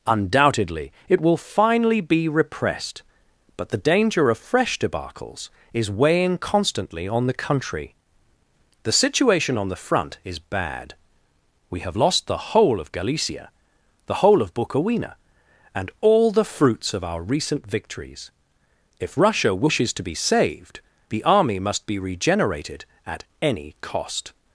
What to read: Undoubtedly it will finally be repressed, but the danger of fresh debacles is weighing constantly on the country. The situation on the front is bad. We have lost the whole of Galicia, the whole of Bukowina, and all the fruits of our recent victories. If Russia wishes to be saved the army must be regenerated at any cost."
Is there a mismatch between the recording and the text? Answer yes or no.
no